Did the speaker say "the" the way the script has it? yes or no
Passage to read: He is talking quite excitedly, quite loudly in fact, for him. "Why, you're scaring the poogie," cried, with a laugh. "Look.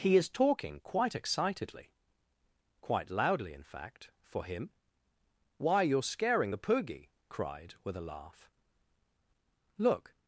yes